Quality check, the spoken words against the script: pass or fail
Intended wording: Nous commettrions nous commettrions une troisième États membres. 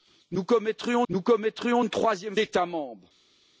pass